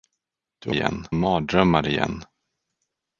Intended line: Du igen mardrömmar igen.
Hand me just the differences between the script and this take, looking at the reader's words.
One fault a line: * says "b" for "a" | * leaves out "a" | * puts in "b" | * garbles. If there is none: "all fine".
all fine